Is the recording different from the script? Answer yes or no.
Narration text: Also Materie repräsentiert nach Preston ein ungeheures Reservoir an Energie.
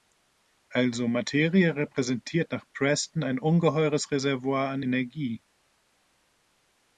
no